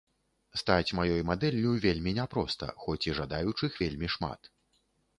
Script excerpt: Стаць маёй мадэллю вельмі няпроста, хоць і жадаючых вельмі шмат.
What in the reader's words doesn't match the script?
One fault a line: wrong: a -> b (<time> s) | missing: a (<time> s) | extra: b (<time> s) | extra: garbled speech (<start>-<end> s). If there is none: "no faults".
no faults